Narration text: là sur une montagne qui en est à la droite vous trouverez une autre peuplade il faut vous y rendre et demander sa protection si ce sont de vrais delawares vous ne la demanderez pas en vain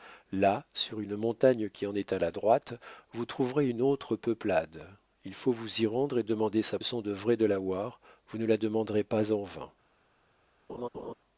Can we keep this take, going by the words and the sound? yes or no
no